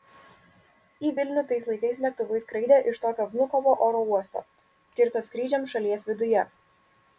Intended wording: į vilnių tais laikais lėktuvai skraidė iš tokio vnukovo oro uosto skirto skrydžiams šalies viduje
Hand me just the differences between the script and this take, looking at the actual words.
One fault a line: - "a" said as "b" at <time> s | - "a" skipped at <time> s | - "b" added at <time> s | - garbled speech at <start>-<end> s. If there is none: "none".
none